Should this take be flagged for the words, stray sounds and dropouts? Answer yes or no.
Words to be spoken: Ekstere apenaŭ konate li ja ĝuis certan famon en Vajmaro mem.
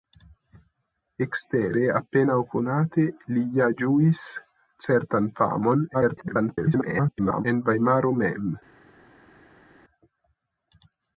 yes